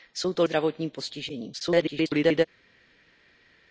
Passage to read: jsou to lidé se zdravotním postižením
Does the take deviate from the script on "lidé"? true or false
true